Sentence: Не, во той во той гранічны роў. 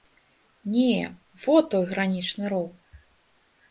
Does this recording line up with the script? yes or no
no